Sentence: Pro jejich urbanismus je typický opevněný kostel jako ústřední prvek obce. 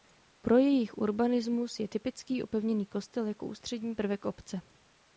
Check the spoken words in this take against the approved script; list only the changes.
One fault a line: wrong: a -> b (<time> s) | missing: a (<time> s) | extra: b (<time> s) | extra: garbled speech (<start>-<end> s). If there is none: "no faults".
no faults